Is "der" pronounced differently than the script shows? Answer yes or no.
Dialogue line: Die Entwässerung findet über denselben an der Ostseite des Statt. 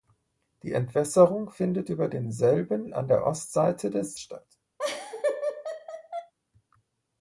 no